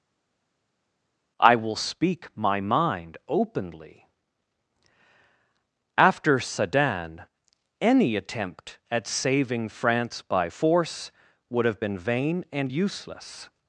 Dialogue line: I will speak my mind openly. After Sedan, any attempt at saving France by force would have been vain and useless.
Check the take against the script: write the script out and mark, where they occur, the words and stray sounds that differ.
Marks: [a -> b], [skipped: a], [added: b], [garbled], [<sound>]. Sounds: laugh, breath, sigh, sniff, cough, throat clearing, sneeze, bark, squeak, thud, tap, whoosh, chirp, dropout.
I will speak my mind openly. After Sedan, any attempt at saving France by force would have been vain and useless.